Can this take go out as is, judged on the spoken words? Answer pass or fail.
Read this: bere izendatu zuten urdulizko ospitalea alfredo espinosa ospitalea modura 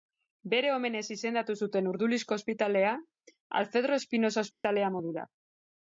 fail